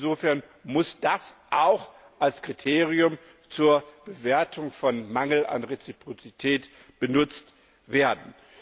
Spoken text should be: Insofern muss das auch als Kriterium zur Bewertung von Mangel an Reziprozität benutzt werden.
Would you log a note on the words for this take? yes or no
no